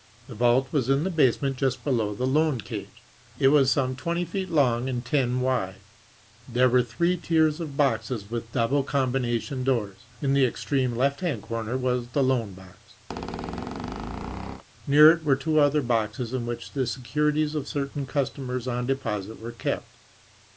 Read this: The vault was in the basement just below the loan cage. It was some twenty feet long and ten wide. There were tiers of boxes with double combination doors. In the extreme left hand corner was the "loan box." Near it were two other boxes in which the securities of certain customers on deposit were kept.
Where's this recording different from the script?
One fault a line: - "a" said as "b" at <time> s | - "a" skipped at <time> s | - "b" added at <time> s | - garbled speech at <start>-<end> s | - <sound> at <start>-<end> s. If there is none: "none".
- "three" added at 6.8 s
- squeak at 13.1-14.6 s